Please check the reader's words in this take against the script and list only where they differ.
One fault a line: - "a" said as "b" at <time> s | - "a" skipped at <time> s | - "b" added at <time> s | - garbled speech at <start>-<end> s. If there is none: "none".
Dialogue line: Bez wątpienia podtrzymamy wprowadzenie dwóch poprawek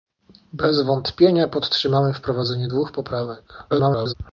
- garbled speech at 3.7-4.1 s